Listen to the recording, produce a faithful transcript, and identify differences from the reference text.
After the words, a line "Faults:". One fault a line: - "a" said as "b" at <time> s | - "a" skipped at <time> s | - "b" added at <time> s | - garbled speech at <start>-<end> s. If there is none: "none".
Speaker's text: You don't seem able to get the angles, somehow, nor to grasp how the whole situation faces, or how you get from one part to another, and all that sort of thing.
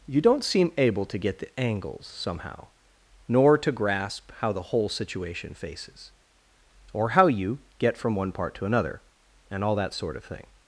You don't seem able to get the angles, somehow, nor to grasp how the whole situation faces, or how you get from one part to another, and all that sort of thing.
Faults:
none